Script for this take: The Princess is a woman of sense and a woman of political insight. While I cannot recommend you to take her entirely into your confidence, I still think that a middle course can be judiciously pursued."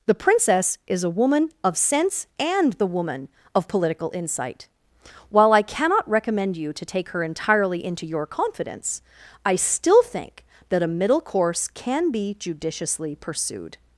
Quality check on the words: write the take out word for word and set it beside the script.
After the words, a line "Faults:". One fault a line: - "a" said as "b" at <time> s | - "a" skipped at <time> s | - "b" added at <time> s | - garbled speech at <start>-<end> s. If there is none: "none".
The Princess is a woman of sense and the woman of political insight. While I cannot recommend you to take her entirely into your confidence, I still think that a middle course can be judiciously pursued."
Faults:
- "a" said as "the" at 2.7 s